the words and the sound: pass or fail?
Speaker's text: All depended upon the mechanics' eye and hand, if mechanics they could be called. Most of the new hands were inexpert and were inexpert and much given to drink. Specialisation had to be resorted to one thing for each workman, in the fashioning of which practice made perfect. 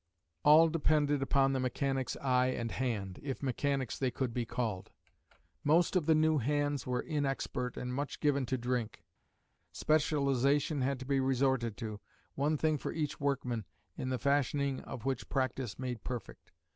fail